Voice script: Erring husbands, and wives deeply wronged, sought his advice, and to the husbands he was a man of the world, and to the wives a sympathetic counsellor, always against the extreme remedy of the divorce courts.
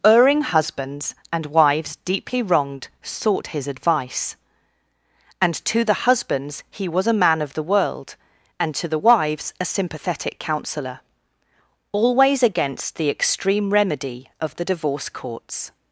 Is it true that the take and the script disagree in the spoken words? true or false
false